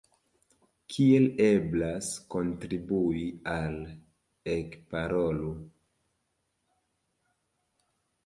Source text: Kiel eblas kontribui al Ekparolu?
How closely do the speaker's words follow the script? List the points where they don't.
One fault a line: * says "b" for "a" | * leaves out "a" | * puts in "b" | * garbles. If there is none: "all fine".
all fine